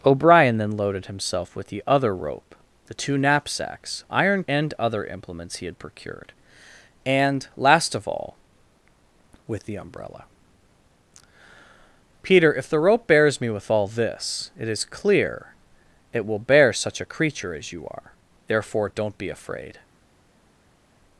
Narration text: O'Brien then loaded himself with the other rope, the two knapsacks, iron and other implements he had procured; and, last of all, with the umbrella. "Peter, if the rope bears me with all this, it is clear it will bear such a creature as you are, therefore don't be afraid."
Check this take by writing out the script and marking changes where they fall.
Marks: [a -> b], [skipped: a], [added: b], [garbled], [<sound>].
O'Brien then loaded himself with the other rope, the two knapsacks, iron and other implements he had procured; and, last of all, with the umbrella. "Peter, if the rope bears me with all this, it is clear it will bear such a creature as you are, therefore don't be afraid."